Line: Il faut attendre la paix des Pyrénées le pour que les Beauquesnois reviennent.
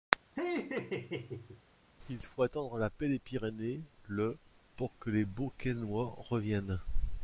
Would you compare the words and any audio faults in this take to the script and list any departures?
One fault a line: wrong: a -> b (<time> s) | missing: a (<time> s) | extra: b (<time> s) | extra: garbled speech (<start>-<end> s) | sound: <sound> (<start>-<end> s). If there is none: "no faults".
sound: laugh (0.4-1.6 s)